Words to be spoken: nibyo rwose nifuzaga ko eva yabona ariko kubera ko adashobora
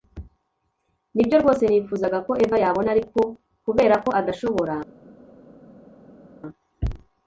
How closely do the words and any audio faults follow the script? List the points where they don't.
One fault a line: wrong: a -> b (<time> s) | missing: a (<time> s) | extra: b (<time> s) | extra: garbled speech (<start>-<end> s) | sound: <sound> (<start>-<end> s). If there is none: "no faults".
no faults